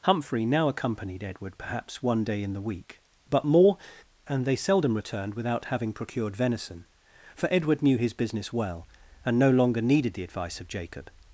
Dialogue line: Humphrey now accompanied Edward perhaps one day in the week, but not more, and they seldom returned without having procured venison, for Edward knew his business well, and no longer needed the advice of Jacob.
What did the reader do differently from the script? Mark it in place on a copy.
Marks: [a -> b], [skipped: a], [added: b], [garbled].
Humphrey now accompanied Edward perhaps one day in the week, but [skipped: not] more, and they seldom returned without having procured venison, for Edward knew his business well, and no longer needed the advice of Jacob.